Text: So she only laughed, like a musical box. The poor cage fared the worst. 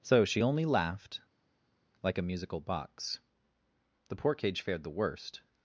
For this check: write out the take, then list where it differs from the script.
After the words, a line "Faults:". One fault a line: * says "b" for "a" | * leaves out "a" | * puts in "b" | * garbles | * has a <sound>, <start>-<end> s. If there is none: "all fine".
So she only laughed, like a musical box. The poor cage fared the worst.
Faults:
all fine